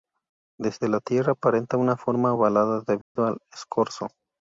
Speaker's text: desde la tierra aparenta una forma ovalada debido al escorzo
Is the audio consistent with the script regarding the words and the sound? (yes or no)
no